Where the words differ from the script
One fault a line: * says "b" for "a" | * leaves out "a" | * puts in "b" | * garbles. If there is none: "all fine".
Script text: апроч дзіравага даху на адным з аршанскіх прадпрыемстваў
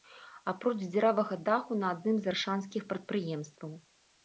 all fine